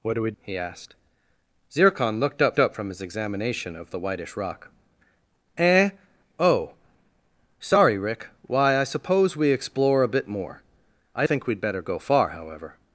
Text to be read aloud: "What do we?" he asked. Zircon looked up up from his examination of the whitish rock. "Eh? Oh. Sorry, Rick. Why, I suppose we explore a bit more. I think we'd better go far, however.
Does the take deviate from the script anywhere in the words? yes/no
no